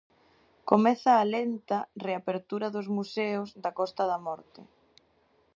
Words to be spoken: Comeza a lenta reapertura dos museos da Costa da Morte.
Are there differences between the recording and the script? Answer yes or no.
no